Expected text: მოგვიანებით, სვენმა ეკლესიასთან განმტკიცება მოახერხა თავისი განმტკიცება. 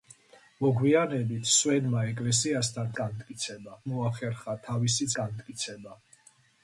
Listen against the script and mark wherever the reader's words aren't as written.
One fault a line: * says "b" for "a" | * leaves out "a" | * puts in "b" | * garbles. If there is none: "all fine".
all fine